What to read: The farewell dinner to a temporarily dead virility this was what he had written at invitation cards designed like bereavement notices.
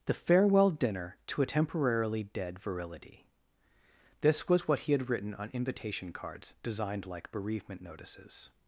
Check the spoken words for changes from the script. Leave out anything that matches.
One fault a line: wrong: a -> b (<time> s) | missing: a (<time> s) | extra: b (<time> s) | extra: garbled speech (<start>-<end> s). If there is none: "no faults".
wrong: at -> on (5.3 s)